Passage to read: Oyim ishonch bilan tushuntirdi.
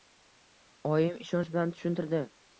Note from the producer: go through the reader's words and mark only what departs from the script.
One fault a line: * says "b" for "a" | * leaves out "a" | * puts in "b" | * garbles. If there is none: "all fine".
all fine